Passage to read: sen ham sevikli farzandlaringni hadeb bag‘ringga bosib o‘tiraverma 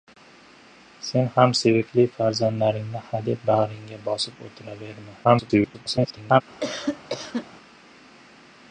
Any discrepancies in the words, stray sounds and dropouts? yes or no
yes